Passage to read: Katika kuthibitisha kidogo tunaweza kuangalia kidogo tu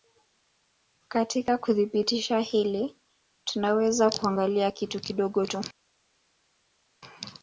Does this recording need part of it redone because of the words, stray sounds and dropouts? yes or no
yes